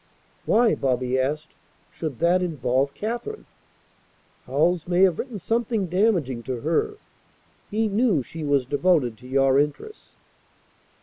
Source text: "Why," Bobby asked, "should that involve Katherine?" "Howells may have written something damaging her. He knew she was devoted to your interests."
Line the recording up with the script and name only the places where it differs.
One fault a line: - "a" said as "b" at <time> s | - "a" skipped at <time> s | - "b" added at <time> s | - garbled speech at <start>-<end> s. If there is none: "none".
- "to" added at 6.4 s